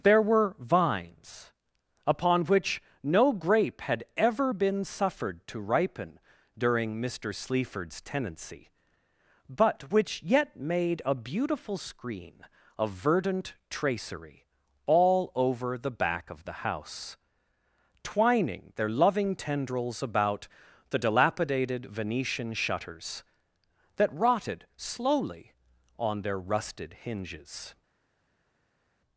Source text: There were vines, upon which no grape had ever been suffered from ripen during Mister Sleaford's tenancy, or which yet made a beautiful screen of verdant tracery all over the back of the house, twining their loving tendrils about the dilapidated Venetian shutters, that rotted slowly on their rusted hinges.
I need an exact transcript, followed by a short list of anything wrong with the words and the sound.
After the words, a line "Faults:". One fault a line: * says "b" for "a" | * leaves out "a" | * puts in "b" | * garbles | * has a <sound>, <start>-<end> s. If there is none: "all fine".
There were vines, upon which no grape had ever been suffered to ripen during Mister Sleaford's tenancy, but which yet made a beautiful screen of verdant tracery all over the back of the house, twining their loving tendrils about the dilapidated Venetian shutters, that rotted slowly on their rusted hinges.
Faults:
* says "to" for "from"
* says "but" for "or"